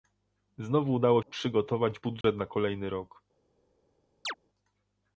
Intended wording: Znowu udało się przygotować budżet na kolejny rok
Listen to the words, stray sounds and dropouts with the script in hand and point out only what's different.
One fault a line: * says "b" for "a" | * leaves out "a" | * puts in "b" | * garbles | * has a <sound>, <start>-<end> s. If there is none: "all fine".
* leaves out "się"
* has a dropout, 2.2-2.2 s
* has a chirp, 4.2-4.3 s